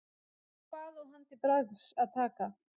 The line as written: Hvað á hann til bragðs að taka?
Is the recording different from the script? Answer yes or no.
no